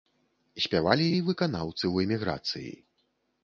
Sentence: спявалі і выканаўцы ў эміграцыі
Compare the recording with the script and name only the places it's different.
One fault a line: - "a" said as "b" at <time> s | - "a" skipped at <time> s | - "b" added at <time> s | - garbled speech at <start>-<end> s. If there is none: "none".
none